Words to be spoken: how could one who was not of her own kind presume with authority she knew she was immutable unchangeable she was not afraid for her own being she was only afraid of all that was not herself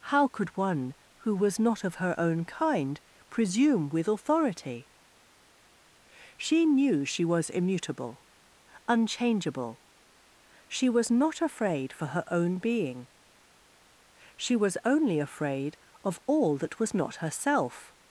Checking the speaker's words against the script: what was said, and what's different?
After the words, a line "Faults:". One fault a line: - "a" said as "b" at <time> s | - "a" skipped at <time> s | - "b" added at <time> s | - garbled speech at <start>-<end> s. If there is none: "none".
how could one who was not of her own kind presume with authority she knew she was immutable unchangeable she was not afraid for her own being she was only afraid of all that was not herself
Faults:
none